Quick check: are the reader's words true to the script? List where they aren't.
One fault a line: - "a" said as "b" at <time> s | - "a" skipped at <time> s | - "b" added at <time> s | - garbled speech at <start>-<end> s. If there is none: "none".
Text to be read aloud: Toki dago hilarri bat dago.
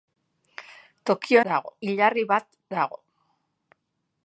none